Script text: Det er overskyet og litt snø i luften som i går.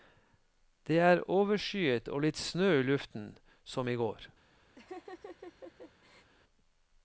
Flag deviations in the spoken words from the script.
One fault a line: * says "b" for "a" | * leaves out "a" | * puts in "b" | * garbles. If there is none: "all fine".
all fine